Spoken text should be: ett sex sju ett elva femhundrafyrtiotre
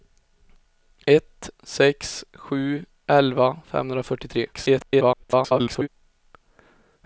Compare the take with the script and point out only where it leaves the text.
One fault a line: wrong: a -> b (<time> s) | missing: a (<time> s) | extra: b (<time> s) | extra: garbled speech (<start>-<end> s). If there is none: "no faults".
missing: ett (2.9 s)
extra: garbled speech (4.5-5.9 s)